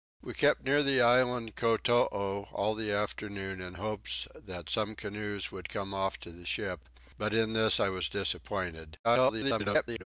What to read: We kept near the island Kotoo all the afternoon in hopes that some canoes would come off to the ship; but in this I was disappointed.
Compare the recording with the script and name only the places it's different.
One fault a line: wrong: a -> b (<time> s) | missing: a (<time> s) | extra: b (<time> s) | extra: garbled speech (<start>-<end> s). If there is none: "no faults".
extra: garbled speech (9.0-10.0 s)